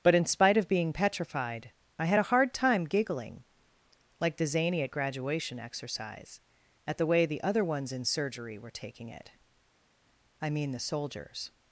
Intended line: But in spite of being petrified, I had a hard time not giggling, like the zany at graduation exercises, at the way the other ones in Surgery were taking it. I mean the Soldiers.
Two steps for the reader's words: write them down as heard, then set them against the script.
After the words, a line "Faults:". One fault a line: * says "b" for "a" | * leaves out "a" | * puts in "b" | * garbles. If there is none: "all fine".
But in spite of being petrified, I had a hard time giggling, like the zany at graduation exercise, at the way the other ones in Surgery were taking it. I mean the Soldiers.
Faults:
* leaves out "not"
* says "exercise" for "exercises"